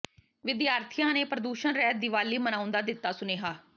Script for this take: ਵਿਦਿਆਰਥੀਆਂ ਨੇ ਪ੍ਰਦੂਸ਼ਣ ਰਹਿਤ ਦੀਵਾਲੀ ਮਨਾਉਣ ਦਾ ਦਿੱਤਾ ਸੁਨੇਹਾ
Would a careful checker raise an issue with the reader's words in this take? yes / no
no